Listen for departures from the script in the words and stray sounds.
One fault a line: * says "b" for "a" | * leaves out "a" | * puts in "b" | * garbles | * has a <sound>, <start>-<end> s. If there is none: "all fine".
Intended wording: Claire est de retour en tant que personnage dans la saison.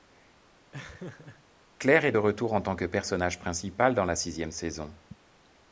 * has a laugh, 0.7-1.4 s
* puts in "principal"
* puts in "sixième"